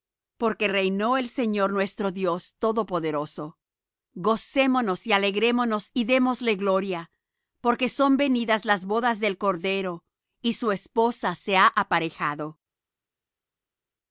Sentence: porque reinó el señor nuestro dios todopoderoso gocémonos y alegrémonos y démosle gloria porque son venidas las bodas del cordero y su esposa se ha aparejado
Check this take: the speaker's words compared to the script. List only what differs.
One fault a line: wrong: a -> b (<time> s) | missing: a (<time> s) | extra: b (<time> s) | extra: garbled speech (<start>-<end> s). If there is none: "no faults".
no faults